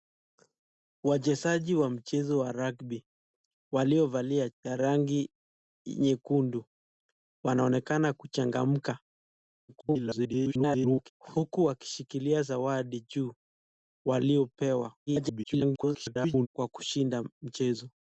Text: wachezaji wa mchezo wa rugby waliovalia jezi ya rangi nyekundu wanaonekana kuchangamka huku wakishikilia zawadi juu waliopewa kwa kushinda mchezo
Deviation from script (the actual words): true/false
true